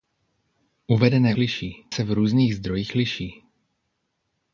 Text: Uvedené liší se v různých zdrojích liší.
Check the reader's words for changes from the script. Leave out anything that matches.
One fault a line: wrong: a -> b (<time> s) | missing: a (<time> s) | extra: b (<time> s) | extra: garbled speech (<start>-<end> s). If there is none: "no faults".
no faults